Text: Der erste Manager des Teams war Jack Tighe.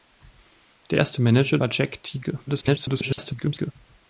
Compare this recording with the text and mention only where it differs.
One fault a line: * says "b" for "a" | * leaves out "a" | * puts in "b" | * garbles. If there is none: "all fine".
* leaves out "des Teams"
* garbles